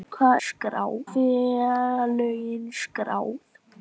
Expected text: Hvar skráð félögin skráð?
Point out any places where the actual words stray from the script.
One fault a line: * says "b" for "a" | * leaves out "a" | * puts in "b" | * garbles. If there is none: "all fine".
all fine